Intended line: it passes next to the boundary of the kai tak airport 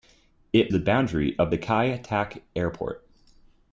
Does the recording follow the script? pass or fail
fail